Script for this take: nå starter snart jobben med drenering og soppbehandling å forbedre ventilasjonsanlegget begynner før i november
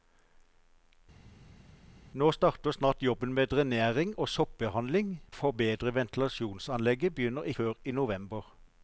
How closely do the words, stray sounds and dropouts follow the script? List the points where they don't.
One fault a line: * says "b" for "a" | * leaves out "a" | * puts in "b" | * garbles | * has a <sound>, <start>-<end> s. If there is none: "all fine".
all fine